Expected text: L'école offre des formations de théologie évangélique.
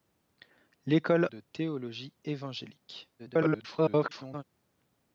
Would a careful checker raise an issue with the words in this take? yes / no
yes